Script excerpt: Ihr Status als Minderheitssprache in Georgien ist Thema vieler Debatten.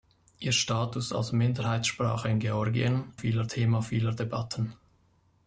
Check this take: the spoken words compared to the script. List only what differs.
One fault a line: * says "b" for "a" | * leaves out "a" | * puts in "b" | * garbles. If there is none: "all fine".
* says "vieler" for "ist"